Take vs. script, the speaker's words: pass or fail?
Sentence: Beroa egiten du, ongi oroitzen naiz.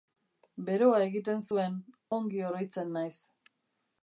fail